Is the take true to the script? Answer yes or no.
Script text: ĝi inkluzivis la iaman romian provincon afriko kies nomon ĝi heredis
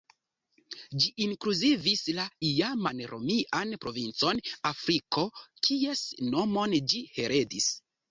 yes